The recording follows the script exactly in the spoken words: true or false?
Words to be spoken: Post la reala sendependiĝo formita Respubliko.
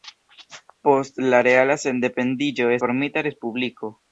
true